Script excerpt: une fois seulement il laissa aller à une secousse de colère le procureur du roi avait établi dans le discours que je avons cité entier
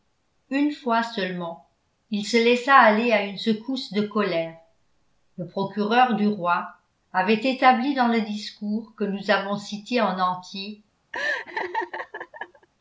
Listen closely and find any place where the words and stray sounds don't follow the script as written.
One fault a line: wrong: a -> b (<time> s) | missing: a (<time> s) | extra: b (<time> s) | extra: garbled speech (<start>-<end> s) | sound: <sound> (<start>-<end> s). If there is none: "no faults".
extra: se (2.2 s)
wrong: je -> nous (9.0 s)
extra: en (10.0 s)
sound: laugh (11.1-12.7 s)